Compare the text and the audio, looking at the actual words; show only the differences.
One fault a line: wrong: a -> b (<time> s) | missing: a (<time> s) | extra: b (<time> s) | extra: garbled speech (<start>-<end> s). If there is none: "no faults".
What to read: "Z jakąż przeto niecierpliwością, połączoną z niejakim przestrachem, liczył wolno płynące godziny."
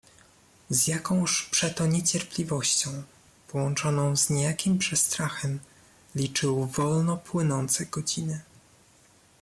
no faults